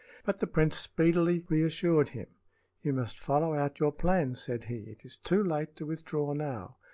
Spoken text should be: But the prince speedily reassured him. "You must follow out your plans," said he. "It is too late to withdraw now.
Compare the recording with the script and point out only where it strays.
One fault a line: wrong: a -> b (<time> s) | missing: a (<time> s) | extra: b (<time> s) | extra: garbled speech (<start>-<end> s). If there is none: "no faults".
no faults